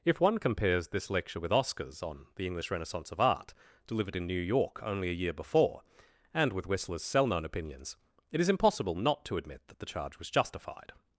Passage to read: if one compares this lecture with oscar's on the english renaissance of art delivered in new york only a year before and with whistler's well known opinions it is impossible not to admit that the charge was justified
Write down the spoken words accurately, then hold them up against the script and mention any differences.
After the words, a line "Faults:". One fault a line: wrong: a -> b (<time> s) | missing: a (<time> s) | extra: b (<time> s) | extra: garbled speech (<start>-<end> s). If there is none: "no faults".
if one compares this lecture with oscar's on the english renaissance of art delivered in new york only a year before and with whistler's cell known opinions it is impossible not to admit that the charge was justified
Faults:
wrong: well -> cell (7.0 s)